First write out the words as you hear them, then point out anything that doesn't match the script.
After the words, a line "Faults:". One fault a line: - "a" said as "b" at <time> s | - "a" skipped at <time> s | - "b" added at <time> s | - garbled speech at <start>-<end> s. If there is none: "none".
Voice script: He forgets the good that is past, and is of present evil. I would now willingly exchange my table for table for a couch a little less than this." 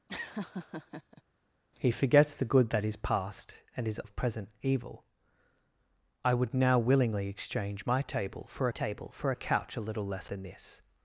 He forgets the good that is past, and is of present evil. I would now willingly exchange my table for table for a couch a little less than this."
Faults:
none